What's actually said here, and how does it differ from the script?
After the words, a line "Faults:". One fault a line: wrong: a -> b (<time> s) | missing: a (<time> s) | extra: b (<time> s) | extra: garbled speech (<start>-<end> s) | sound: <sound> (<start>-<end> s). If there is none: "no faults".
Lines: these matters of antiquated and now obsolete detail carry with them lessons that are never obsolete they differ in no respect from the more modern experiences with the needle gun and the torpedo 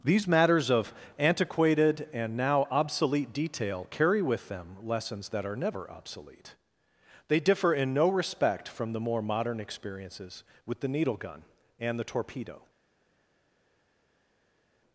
these matters of antiquated and now obsolete detail carry with them lessons that are never obsolete they differ in no respect from the more modern experiences with the needle gun and the torpedo
Faults:
no faults